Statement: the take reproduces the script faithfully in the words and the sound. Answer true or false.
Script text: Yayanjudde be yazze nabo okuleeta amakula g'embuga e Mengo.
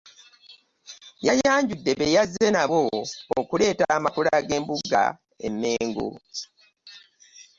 true